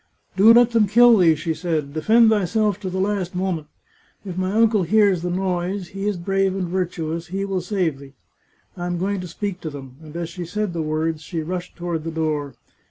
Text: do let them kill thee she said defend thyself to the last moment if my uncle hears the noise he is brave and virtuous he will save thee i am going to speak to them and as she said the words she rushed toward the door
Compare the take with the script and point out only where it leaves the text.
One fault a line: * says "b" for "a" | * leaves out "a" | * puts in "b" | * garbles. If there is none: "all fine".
all fine